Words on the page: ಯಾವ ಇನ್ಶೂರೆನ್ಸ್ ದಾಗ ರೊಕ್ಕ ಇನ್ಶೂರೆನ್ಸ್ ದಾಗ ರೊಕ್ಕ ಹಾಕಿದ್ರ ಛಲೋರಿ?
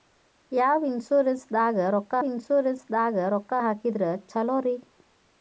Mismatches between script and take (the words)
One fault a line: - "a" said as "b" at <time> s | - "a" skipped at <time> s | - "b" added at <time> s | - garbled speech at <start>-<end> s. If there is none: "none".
none